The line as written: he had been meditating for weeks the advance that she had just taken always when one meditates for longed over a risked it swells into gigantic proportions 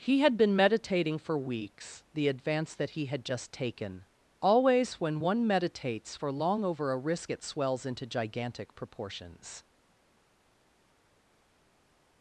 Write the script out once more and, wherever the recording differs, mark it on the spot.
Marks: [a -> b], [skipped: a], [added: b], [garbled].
he had been meditating for weeks the advance that [she -> he] had just taken always when one meditates for [longed -> long] over a [risked -> risk] it swells into gigantic proportions